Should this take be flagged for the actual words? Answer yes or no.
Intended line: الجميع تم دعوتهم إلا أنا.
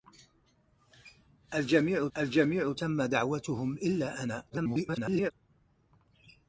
yes